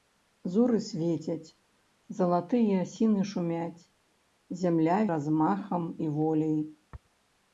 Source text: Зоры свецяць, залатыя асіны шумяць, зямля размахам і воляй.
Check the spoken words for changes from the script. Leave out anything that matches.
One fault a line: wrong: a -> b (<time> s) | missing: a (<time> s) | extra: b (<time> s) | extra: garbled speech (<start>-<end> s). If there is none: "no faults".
no faults